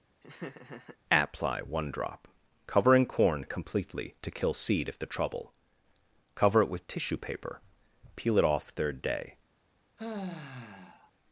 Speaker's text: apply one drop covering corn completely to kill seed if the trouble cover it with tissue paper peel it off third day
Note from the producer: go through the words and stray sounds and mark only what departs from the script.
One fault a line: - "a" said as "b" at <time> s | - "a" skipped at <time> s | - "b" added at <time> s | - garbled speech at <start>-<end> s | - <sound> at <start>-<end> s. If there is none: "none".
- laugh at 0.2-1.0 s
- sigh at 10.0-11.1 s